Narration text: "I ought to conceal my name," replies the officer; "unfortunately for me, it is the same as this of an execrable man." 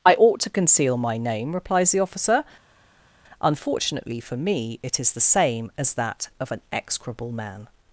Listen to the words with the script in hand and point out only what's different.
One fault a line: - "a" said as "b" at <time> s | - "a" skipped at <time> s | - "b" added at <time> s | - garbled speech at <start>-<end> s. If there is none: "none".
- "this" said as "that" at 5.9 s